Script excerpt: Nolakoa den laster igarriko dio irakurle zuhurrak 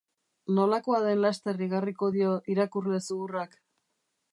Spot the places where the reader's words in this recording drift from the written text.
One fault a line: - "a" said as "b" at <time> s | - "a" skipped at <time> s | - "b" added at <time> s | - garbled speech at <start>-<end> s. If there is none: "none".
none